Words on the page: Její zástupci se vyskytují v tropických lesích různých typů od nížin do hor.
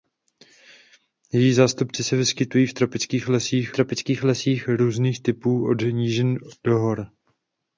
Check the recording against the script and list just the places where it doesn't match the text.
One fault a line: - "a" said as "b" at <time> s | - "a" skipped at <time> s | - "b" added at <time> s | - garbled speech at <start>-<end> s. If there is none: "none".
- "tropických lesích" added at 3.7 s